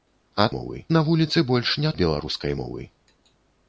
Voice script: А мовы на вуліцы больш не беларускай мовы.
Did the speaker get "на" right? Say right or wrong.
right